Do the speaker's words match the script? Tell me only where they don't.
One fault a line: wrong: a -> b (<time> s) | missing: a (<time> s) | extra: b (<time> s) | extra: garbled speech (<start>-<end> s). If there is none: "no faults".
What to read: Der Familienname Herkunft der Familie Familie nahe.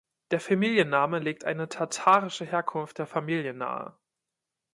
extra: legt eine tatarische (1.2 s)
missing: Familie (3.5 s)